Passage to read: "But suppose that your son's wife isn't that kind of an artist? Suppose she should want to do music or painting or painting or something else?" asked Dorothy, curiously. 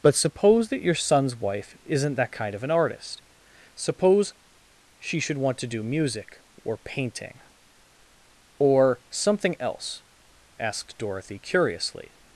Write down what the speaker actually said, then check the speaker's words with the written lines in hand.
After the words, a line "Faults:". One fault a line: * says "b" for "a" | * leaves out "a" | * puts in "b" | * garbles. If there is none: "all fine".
"But suppose that your son's wife isn't that kind of an artist? Suppose she should want to do music or painting or something else?" asked Dorothy, curiously.
Faults:
* leaves out "painting or"